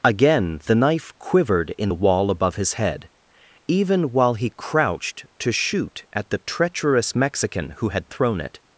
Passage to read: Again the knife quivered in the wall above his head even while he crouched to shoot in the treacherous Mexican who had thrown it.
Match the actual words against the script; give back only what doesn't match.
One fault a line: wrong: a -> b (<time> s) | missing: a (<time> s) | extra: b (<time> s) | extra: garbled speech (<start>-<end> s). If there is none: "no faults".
wrong: in -> at (6.1 s)